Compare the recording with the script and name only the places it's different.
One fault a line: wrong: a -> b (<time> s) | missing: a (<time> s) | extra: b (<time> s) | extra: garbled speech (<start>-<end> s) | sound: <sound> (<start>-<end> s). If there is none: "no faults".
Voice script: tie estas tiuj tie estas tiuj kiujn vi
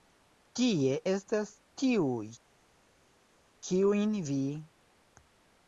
missing: tie estas tiuj (2.3 s)